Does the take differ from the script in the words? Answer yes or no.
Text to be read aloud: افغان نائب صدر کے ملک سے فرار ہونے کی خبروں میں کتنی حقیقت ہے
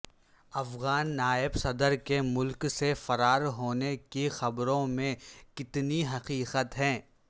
no